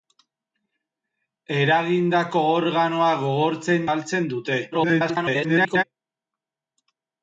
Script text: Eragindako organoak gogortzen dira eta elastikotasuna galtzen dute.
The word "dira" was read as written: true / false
false